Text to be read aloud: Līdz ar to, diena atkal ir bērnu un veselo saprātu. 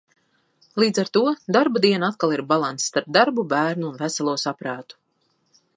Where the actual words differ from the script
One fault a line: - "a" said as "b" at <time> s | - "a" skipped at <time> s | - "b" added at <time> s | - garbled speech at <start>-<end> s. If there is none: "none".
- "darba" added at 1.6 s
- "balanss starp darbu" added at 2.5 s